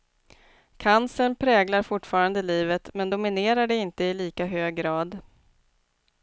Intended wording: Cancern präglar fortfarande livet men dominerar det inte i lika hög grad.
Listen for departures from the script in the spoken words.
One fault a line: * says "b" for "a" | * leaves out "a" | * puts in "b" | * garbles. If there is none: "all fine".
all fine